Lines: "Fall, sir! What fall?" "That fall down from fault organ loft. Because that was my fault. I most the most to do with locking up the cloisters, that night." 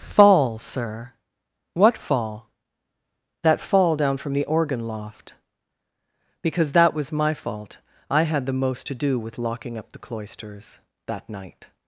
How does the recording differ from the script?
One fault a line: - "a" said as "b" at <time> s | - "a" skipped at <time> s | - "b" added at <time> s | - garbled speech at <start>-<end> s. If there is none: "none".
- "fault" said as "the" at 4.3 s
- "most" said as "had" at 8.2 s